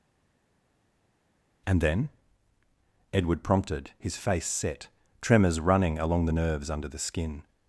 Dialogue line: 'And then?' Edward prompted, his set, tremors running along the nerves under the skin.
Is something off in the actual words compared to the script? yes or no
yes